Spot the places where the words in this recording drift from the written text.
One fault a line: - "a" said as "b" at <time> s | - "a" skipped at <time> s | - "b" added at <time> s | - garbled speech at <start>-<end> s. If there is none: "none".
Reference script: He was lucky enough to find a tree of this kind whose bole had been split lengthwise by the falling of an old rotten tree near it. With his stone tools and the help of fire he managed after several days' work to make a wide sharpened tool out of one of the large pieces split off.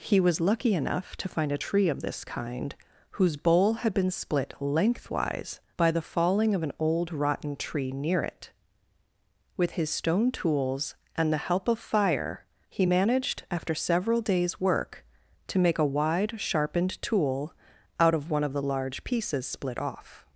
none